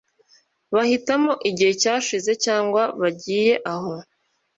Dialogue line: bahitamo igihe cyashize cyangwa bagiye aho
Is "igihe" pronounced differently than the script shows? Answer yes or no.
no